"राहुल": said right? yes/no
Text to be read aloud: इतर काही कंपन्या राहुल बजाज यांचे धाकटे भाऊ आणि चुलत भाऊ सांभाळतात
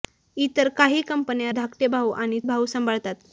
no